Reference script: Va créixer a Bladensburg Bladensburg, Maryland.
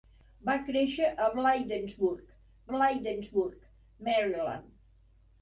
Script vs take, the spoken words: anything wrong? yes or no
no